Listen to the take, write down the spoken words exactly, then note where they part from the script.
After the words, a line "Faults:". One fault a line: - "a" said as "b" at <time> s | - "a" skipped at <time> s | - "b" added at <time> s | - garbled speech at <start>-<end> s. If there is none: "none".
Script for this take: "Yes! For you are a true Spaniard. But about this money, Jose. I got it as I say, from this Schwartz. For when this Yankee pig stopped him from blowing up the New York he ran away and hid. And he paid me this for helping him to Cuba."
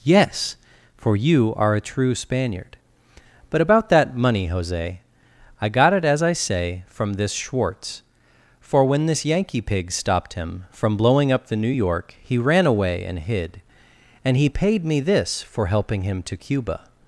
"Yes! For you are a true Spaniard. But about that money, Jose. I got it as I say, from this Schwartz. For when this Yankee pig stopped him from blowing up the New York he ran away and hid. And he paid me this for helping him to Cuba."
Faults:
- "this" said as "that" at 3.9 s